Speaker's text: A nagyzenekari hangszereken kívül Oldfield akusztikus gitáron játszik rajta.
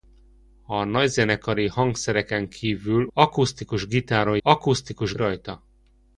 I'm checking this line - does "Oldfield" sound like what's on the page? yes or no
no